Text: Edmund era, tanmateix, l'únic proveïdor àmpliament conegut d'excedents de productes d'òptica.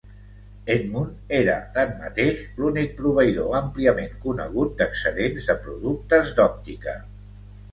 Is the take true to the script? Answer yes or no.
yes